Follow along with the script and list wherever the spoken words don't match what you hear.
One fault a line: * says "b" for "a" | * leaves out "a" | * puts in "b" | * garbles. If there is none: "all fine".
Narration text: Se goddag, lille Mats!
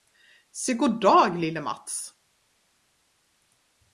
all fine